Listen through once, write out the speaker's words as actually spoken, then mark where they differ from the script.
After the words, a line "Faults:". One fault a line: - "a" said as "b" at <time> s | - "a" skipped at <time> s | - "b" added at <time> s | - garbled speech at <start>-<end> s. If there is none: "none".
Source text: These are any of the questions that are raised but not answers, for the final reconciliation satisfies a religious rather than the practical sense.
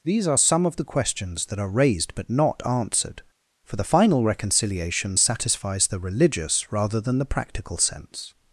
These are some of the questions that are raised but not answered, for the final reconciliation satisfies the religious rather than the practical sense.
Faults:
- "any" said as "some" at 0.4 s
- "answers" said as "answered" at 2.6 s
- "a" said as "the" at 5.9 s